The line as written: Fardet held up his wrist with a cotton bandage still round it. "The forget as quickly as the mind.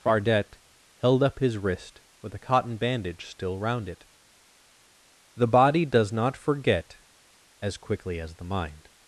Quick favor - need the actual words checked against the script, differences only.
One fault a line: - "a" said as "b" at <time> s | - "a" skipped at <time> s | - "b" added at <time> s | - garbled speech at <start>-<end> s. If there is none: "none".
- "body does not" added at 5.5 s